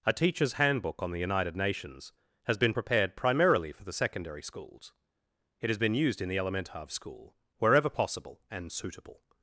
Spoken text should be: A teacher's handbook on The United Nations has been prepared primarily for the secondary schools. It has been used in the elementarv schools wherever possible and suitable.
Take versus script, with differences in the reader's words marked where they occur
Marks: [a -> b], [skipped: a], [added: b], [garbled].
A teacher's handbook on The United Nations has been prepared primarily for the secondary schools. It has been used in the elementarv [schools -> school] wherever possible and suitable.